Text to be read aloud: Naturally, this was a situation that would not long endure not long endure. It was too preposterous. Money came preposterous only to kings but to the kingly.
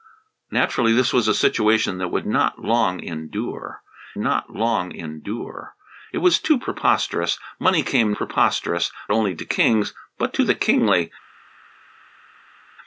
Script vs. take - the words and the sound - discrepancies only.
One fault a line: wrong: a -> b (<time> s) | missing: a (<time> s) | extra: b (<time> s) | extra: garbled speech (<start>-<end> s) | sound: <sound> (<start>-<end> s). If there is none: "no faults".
no faults